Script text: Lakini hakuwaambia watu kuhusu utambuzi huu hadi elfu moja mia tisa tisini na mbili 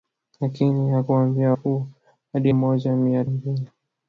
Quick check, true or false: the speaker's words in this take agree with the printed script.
false